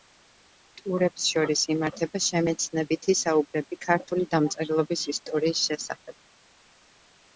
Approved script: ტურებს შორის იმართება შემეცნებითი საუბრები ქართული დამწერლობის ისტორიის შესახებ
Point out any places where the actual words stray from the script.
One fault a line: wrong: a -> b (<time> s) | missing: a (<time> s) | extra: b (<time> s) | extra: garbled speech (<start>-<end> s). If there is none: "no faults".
no faults